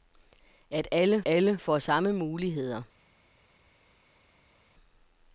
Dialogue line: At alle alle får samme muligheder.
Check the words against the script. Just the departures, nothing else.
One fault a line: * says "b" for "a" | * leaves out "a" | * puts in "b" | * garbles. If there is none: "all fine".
all fine